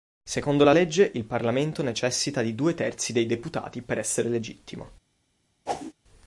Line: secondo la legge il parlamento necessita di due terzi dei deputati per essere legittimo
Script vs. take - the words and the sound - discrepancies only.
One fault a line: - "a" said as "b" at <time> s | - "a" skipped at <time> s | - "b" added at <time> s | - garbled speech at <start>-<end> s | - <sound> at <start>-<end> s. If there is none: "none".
- whoosh at 5.7-5.9 s